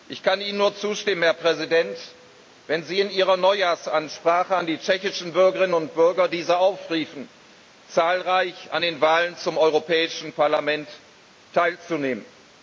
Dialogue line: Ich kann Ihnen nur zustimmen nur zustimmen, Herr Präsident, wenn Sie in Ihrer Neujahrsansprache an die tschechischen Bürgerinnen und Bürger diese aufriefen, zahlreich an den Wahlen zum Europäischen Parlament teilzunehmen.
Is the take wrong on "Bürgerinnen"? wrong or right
right